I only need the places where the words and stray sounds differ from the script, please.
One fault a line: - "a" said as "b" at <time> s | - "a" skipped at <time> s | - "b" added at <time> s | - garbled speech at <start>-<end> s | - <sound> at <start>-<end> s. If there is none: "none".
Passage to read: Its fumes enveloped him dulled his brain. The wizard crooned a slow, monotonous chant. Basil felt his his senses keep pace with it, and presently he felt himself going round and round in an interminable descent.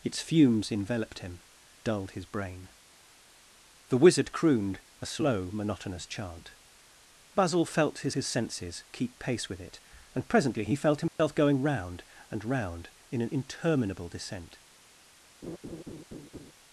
- dropout at 11.1-11.2 s
- laugh at 15.4-16.5 s